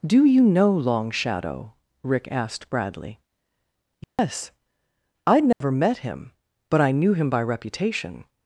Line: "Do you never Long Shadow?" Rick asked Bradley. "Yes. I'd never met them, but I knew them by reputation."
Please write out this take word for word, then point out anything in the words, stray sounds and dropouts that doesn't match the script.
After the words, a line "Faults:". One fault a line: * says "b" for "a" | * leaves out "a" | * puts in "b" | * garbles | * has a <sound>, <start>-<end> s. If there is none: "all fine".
"Do you know Long Shadow?" Rick asked Bradley. "Yes. I'd never met him, but I knew him by reputation."
Faults:
* says "know" for "never"
* has a dropout, 4.0-4.2 s
* has a dropout, 5.5-5.6 s
* says "him" for "them"
* says "him" for "them"